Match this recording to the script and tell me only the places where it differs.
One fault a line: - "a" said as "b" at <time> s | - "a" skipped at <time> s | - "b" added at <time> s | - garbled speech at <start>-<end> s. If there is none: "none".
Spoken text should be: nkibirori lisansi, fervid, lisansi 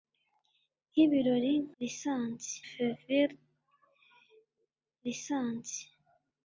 none